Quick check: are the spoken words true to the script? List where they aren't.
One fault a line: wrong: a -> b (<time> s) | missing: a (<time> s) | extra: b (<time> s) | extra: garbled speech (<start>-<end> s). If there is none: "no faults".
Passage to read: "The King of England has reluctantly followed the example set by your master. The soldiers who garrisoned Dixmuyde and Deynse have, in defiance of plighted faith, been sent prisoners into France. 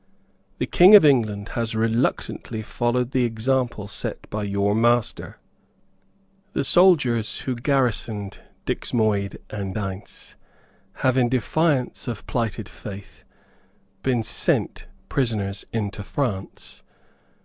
no faults